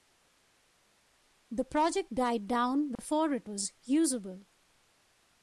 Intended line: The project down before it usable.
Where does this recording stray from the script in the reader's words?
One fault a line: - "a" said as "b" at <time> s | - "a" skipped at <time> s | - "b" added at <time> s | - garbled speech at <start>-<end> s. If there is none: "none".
- "died" added at 2.1 s
- "was" added at 3.5 s